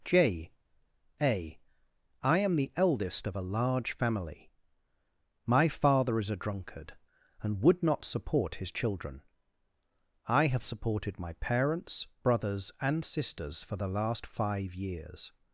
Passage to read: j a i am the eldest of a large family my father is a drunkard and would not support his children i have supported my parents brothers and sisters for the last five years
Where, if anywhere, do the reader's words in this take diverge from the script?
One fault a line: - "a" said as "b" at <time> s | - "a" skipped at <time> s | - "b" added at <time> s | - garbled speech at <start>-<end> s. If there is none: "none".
none